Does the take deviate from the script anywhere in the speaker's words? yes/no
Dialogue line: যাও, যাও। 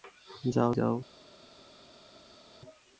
no